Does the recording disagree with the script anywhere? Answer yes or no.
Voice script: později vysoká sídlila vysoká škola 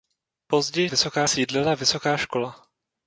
no